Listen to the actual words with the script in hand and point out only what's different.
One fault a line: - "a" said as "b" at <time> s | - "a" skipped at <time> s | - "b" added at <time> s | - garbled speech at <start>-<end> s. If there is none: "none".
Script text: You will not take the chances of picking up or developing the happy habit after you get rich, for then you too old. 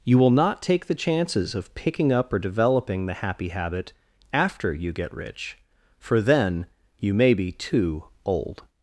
- "may be" added at 7.1 s